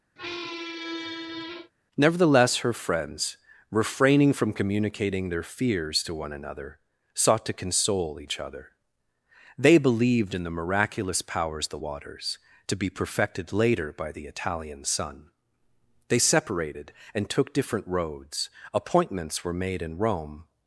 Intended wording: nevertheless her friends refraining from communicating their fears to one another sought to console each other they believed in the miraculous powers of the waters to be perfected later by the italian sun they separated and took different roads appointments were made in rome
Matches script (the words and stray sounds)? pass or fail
fail